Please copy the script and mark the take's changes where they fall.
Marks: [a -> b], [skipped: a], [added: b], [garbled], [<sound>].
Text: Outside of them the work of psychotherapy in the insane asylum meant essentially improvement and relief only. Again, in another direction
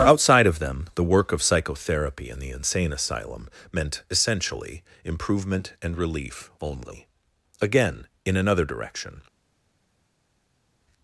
Outside of them the work of psychotherapy in the insane asylum meant essentially improvement and relief only. Again, in another direction